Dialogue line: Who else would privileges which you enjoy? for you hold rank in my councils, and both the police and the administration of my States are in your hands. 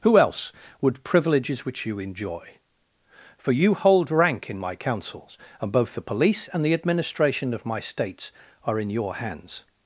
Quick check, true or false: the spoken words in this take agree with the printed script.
true